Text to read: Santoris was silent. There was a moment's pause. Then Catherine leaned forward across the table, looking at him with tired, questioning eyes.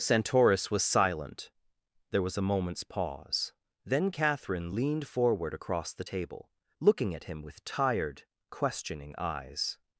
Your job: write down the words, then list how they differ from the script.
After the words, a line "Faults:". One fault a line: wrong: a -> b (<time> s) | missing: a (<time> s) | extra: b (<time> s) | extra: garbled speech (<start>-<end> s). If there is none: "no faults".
Santoris was silent. There was a moment's pause. Then Catherine leaned forward across the table, looking at him with tired, questioning eyes.
Faults:
no faults